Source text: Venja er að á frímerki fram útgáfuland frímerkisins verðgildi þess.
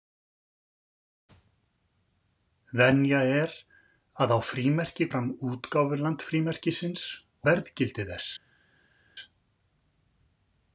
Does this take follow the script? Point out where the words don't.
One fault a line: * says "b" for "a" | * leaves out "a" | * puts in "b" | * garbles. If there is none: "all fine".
all fine